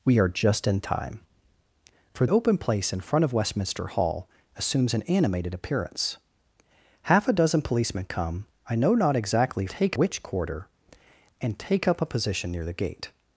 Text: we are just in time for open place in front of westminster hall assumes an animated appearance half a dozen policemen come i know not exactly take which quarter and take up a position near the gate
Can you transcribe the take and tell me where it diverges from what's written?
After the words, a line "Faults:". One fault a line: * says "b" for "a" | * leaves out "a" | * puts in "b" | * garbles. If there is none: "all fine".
we are just in time for open place in front of westminster hall assumes an animated appearance half a dozen policemen come i know not exactly take which quarter and take up a position near the gate
Faults:
all fine